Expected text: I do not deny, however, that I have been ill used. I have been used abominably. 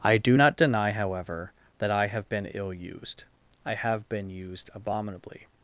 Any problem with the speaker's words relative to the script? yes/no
no